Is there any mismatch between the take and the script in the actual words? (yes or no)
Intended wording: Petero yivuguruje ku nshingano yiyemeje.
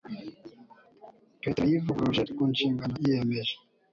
no